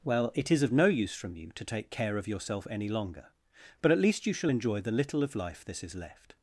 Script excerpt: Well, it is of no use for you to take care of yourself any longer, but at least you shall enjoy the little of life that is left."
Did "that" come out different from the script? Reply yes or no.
yes